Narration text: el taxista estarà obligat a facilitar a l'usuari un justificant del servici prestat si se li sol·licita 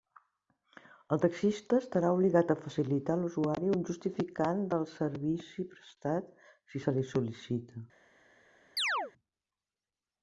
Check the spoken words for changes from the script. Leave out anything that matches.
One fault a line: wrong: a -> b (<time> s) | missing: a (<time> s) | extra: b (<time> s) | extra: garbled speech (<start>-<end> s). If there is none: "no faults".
no faults